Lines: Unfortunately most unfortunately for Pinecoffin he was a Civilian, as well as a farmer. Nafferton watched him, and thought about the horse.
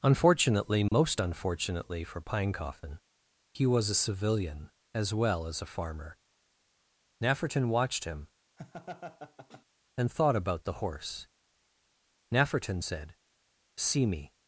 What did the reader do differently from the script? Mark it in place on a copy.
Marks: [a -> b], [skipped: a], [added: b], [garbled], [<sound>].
Unfortunately most [dropout] unfortunately for Pinecoffin he was a Civilian, as well as a farmer. Nafferton watched him, [laugh] and thought about the horse. [added: Nafferton said See me]